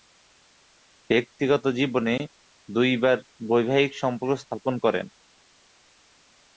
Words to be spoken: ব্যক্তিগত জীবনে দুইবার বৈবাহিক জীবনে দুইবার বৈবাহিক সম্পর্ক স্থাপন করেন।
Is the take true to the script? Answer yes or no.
no